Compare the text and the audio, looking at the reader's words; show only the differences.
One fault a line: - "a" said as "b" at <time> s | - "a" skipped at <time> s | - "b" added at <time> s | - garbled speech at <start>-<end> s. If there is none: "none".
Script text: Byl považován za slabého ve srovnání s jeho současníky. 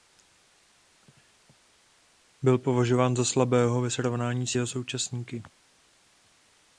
none